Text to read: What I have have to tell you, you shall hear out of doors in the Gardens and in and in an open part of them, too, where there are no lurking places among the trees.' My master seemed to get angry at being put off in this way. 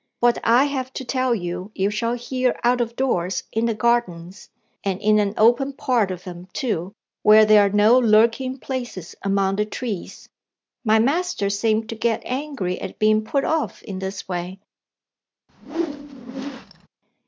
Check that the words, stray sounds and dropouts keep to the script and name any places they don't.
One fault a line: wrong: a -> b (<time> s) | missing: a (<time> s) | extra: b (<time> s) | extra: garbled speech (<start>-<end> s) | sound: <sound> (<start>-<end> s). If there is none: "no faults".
missing: have (0.9 s)
missing: and in (5.2 s)
sound: whoosh (15.5-16.9 s)